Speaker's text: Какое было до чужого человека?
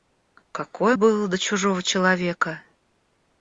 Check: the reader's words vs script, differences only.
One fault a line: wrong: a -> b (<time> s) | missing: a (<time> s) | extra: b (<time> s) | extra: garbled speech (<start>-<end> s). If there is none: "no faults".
no faults